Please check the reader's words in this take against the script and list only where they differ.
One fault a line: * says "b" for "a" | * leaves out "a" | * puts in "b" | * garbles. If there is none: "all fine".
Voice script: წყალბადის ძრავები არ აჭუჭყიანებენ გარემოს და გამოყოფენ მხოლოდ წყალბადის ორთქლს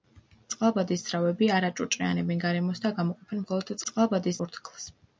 all fine